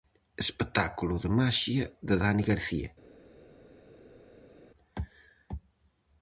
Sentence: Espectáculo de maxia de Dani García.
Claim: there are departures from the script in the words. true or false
false